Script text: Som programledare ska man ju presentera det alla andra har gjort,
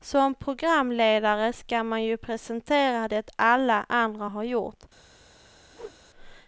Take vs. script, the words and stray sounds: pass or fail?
fail